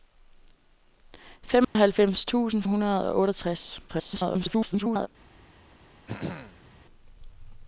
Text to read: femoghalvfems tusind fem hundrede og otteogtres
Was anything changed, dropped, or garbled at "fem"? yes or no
yes